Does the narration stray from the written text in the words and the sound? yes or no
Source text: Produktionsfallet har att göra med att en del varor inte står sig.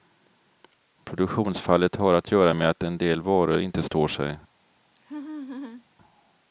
yes